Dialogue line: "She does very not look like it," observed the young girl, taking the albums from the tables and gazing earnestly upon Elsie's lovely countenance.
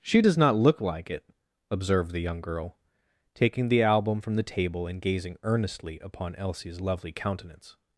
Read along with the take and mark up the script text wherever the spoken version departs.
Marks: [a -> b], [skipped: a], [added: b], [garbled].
"She does [skipped: very] not look like it," observed the young girl, taking the [albums -> album] from the [tables -> table] and gazing earnestly upon Elsie's lovely countenance.